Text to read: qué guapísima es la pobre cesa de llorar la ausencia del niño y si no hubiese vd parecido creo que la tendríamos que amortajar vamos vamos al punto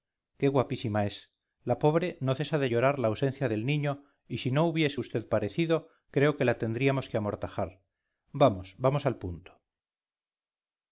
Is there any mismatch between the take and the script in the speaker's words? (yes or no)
yes